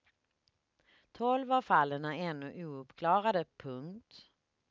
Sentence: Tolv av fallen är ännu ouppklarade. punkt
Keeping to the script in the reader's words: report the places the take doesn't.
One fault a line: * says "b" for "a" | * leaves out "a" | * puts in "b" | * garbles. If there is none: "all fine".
all fine